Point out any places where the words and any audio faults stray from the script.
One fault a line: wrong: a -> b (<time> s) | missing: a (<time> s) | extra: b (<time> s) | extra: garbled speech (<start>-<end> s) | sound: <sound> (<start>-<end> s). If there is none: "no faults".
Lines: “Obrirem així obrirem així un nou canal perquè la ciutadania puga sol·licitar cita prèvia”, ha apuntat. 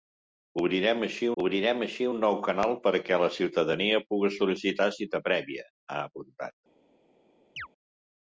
sound: chirp (7.6-7.7 s)